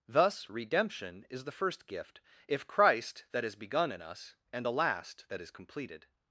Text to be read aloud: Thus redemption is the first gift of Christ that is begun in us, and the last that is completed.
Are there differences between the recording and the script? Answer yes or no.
yes